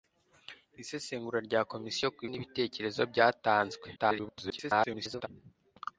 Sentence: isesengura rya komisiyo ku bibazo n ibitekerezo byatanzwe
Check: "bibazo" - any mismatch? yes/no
yes